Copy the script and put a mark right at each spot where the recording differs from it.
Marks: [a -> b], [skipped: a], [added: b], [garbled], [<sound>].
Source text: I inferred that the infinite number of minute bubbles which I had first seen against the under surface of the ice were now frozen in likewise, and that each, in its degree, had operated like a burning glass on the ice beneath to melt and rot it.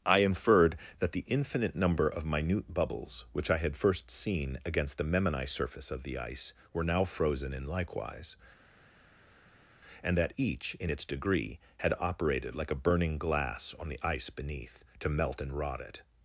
I inferred that the infinite number of minute bubbles which I had first seen against the [under -> memini] surface of the ice were now frozen in likewise, and that each, in its degree, had operated like a burning glass on the ice beneath to melt and rot it.